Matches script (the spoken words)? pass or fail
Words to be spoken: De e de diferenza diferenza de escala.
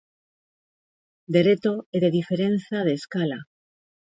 fail